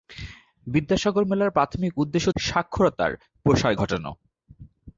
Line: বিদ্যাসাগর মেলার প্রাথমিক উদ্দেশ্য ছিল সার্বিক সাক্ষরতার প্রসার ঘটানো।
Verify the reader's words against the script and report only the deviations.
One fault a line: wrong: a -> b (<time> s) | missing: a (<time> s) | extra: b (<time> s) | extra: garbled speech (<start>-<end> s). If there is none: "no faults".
missing: ছিল সার্বিক (2.3 s)